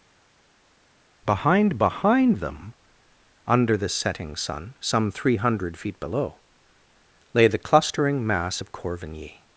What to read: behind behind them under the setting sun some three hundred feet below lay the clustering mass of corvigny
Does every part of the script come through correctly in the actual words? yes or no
yes